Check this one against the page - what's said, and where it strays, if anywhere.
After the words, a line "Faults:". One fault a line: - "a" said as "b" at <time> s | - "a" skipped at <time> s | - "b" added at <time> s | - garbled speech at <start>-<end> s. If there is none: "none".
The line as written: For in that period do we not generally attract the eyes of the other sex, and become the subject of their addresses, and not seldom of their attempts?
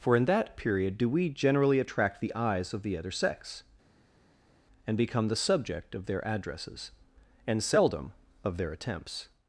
For in that period do we generally attract the eyes of the other sex, and become the subject of their addresses, and seldom of their attempts?
Faults:
- "not" skipped at 1.3 s
- "not" skipped at 7.6 s